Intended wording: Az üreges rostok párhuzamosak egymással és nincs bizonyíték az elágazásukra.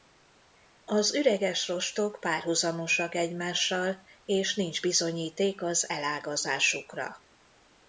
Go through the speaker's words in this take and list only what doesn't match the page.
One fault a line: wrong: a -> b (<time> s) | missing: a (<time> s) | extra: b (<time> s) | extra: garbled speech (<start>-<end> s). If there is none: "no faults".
no faults